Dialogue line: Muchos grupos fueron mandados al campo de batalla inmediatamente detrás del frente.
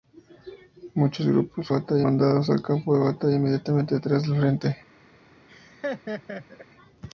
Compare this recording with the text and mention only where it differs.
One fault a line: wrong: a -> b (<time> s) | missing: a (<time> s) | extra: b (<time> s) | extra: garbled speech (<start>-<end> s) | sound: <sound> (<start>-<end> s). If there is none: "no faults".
wrong: fueron -> batalla (1.7 s)
sound: laugh (5.5-6.7 s)